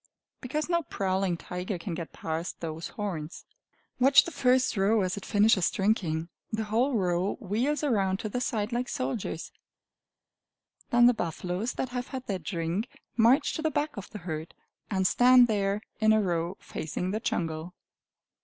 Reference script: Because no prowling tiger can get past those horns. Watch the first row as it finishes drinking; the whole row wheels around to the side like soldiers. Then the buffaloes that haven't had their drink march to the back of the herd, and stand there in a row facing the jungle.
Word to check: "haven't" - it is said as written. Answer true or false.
false